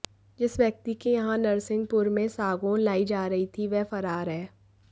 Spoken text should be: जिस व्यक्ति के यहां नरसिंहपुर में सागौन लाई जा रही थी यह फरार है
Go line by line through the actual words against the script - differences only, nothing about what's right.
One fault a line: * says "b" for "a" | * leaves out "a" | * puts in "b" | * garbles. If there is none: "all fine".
* says "वह" for "यह"